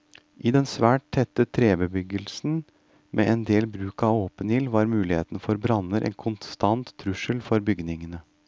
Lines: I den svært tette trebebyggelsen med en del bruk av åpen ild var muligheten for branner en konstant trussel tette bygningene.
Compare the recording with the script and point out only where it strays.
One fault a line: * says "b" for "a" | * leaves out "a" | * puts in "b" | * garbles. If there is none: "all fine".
* says "for" for "tette"